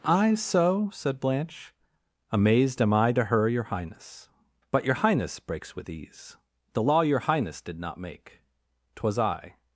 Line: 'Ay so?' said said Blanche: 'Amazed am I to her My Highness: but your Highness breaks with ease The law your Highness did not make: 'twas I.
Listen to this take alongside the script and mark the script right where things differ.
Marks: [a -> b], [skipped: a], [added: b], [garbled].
'Ay so?' said [skipped: said] Blanche: 'Amazed am I to her [My -> Your] Highness: but your Highness breaks with ease The law your Highness did not make: 'twas I.